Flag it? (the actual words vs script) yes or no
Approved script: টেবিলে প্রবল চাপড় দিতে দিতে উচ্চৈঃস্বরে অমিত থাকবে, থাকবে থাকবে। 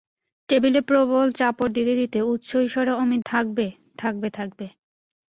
no